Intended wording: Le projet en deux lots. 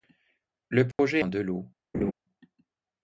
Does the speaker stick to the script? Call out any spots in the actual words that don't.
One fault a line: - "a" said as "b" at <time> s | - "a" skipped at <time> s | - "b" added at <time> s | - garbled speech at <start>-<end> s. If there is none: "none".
none